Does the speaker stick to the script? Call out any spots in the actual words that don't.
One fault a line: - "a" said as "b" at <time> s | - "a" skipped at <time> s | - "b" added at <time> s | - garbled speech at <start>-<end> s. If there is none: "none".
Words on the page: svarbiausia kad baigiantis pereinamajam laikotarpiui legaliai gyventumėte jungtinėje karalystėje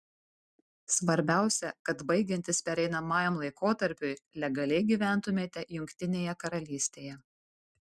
none